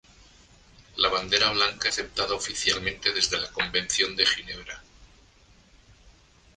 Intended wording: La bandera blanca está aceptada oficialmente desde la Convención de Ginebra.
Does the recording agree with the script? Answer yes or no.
no